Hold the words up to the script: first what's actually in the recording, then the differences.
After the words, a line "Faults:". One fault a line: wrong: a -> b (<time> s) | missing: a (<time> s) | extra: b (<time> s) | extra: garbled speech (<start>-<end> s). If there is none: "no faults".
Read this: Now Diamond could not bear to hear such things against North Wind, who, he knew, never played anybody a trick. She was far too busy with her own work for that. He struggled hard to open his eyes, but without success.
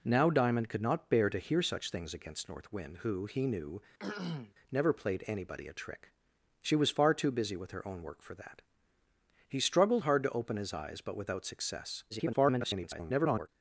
Now Diamond could not bear to hear such things against North Wind, who, he knew, never played anybody a trick. She was far too busy with her own work for that. He struggled hard to open his eyes, but without success. [garbled]
Faults:
extra: garbled speech (12.1-13.5 s)